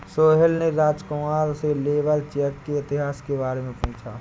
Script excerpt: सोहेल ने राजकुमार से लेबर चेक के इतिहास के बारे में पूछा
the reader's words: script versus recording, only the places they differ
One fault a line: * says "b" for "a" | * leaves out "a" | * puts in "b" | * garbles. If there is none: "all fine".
all fine